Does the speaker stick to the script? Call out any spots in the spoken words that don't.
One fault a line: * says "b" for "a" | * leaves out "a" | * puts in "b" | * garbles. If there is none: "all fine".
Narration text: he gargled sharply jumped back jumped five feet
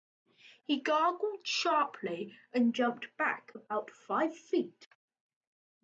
* puts in "and"
* says "about" for "jumped"